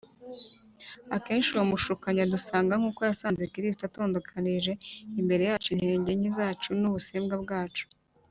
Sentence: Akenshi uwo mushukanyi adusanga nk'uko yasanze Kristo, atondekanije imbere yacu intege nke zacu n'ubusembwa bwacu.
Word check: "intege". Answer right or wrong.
right